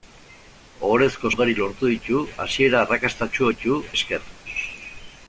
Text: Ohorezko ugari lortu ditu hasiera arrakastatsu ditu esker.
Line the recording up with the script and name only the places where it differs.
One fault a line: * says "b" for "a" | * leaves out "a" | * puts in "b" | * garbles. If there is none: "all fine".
all fine